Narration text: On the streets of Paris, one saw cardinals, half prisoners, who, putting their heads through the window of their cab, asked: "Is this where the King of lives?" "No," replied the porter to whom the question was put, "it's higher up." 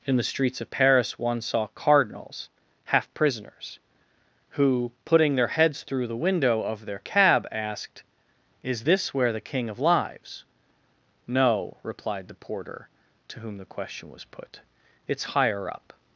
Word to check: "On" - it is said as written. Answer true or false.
false